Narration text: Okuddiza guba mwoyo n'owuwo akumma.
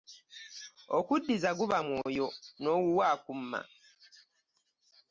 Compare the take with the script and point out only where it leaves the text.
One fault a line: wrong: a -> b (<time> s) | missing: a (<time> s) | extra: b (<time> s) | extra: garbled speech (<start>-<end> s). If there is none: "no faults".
no faults